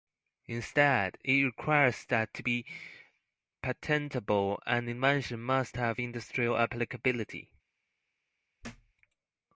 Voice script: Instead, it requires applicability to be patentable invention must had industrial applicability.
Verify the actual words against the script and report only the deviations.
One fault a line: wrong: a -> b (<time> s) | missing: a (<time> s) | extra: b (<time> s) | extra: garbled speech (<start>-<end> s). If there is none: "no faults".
wrong: applicability -> that (2.1 s)
extra: an (4.7 s)
wrong: had -> have (5.8 s)